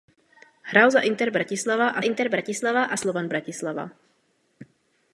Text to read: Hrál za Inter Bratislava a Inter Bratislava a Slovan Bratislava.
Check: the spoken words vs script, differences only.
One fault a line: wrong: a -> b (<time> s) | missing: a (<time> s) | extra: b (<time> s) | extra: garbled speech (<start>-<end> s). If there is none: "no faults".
no faults